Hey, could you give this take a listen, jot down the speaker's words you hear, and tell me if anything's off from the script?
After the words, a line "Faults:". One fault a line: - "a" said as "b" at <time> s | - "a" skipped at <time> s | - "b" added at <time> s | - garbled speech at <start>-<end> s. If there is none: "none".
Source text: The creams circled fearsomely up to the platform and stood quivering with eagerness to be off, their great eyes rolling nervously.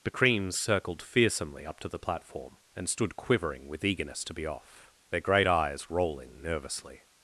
The creams circled fearsomely up to the platform and stood quivering with eagerness to be off, their great eyes rolling nervously.
Faults:
none